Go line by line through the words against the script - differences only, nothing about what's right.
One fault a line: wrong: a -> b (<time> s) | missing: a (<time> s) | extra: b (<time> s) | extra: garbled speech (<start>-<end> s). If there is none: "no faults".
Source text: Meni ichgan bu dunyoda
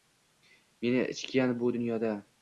no faults